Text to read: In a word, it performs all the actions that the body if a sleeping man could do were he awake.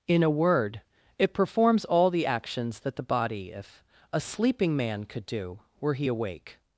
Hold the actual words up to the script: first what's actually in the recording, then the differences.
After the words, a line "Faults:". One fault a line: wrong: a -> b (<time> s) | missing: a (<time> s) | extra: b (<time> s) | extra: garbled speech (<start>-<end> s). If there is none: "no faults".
In a word, it performs all the actions that the body if a sleeping man could do were he awake.
Faults:
no faults